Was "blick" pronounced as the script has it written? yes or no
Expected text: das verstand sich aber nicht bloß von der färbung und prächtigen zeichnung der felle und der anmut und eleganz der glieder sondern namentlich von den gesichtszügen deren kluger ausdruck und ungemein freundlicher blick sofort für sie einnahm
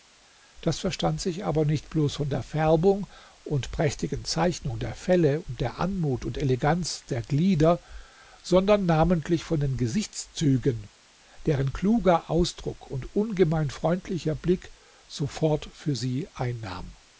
yes